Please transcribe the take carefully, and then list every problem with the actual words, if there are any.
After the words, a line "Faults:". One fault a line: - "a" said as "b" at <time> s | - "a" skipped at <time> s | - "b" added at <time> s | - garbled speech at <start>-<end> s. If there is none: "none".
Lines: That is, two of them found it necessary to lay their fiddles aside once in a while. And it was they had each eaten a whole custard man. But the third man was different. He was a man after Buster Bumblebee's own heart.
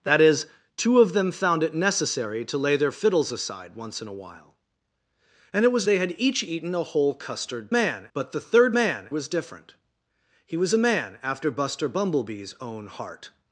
That is, two of them found it necessary to lay their fiddles aside once in a while. And it was they had each eaten a whole custard man. But the third man was different. He was a man after Buster Bumblebee's own heart.
Faults:
none